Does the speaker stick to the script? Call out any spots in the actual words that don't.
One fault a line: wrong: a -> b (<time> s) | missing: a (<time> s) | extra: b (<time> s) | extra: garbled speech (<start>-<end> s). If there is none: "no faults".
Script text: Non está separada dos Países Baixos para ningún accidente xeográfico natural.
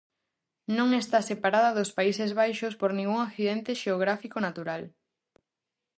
wrong: para -> por (2.8 s)